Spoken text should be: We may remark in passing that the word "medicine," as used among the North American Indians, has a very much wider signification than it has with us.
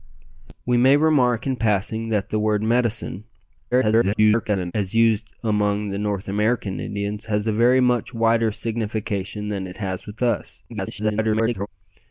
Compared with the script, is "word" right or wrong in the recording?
right